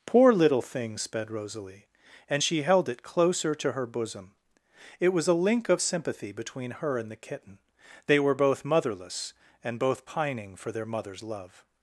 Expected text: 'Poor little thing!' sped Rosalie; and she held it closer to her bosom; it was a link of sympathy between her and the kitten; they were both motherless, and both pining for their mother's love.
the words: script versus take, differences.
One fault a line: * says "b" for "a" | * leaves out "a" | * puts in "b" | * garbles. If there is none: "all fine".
all fine